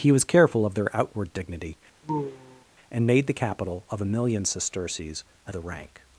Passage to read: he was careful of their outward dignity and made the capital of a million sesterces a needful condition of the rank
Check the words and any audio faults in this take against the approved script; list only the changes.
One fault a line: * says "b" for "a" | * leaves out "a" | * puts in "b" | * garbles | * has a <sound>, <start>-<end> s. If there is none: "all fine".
* has a sigh, 2.0-2.6 s
* leaves out "needful condition of"